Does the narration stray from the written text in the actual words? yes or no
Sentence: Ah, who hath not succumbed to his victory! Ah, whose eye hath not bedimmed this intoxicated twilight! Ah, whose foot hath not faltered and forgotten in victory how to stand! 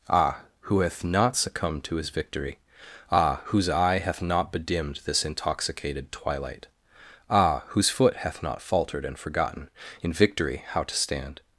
no